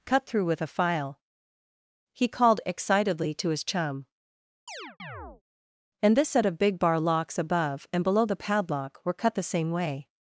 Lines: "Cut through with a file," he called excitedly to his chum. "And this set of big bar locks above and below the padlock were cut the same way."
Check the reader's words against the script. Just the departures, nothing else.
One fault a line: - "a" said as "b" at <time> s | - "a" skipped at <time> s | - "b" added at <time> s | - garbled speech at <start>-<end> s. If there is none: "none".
none